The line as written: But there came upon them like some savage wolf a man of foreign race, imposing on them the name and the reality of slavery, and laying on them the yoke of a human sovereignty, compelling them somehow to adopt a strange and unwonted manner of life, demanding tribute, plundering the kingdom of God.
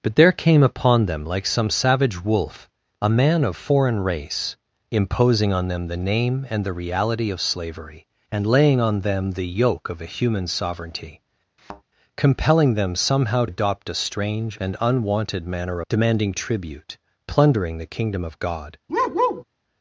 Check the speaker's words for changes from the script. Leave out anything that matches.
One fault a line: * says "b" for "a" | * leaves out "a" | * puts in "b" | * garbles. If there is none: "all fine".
* leaves out "to"
* leaves out "of life"